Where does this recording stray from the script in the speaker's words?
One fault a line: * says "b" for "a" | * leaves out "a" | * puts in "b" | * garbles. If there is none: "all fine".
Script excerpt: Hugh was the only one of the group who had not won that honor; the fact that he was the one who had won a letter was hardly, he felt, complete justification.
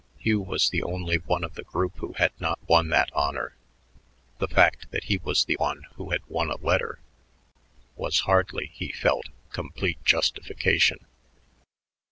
all fine